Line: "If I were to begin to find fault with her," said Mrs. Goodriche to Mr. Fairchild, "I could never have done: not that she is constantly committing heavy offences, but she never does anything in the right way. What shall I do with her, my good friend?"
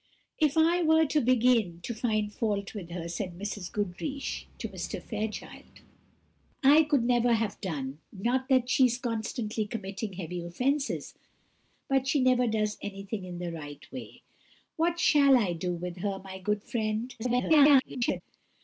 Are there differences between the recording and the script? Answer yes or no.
yes